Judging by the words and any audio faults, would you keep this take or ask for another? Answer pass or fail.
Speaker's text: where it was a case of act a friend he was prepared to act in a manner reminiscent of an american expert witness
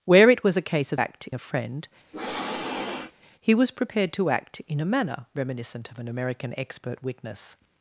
fail